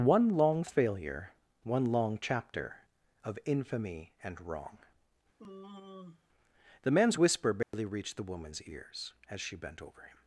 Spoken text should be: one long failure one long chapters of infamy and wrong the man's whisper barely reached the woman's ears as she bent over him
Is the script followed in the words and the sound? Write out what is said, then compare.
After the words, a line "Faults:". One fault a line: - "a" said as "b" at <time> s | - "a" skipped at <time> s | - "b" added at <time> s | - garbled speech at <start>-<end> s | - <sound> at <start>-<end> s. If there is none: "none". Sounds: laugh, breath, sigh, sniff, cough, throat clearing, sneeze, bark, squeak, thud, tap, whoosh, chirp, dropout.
one long failure one long chapter of infamy and wrong the man's whisper barely reached the woman's ears as she bent over him
Faults:
- "chapters" said as "chapter" at 2.2 s
- sigh at 5.4-6.3 s
- dropout at 7.6-7.7 s